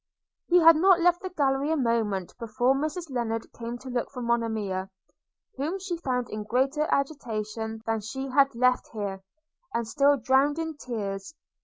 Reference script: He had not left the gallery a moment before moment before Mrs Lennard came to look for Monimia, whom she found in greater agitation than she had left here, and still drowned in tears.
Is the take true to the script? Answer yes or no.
no